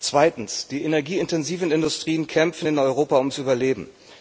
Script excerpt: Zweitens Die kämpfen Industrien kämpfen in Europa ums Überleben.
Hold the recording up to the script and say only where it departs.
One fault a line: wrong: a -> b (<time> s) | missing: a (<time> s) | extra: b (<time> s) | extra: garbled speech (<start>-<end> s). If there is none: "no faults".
wrong: kämpfen -> energieintensiven (0.8 s)